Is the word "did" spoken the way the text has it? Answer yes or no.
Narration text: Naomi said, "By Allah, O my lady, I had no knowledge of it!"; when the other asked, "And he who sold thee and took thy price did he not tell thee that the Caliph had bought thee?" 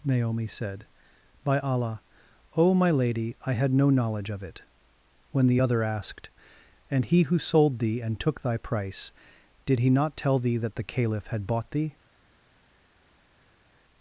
yes